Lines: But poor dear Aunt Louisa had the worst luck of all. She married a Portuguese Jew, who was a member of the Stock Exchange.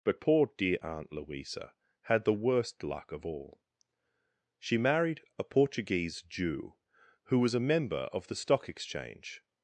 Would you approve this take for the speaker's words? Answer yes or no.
yes